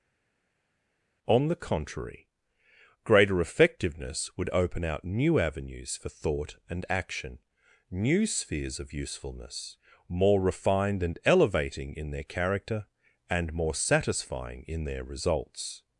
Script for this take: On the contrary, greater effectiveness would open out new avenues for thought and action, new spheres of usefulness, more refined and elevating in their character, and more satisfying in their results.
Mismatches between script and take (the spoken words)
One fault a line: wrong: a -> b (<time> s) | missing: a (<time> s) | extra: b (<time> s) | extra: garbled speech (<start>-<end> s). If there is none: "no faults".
no faults